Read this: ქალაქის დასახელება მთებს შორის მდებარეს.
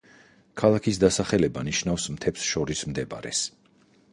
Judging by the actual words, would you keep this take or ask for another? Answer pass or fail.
fail